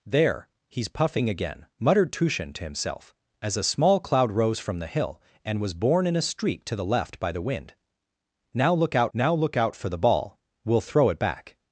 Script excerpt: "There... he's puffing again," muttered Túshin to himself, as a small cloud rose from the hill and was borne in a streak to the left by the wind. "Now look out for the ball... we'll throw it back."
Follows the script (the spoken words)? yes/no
no